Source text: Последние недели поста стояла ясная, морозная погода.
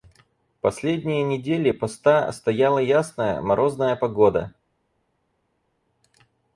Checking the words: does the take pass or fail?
pass